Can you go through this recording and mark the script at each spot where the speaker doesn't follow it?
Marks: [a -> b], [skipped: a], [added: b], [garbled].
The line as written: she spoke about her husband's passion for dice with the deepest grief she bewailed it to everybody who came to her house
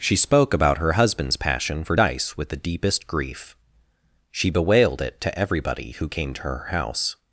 she spoke about her husband's passion for dice with the deepest grief she bewailed it to everybody who came to her house